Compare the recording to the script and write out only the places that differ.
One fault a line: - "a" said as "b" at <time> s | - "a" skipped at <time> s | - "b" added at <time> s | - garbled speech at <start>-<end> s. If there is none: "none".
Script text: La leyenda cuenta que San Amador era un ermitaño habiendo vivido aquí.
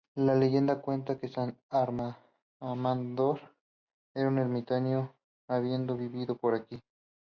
- "por" added at 6.4 s